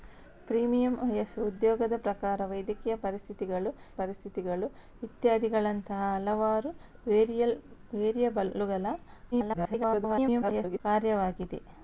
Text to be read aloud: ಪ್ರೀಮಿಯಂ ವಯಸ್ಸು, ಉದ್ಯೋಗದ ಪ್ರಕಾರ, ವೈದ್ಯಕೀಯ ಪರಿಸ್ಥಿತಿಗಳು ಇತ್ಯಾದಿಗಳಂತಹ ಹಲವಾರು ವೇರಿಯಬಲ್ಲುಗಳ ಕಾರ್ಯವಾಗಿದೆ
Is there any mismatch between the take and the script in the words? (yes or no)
yes